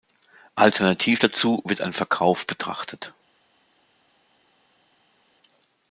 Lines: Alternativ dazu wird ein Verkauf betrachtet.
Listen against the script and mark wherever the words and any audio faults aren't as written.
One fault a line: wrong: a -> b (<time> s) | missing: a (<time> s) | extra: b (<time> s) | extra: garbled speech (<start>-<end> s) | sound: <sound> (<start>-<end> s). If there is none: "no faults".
no faults